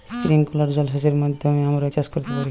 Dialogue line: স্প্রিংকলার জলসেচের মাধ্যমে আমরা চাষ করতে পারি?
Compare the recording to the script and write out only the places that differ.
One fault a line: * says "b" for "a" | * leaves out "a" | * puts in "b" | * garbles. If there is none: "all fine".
all fine